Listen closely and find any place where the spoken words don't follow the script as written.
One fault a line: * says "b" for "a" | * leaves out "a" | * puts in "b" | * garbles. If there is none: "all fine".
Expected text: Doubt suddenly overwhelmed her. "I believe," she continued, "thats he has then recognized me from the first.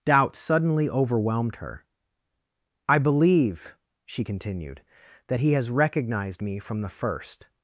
* says "that" for "thats"
* leaves out "then"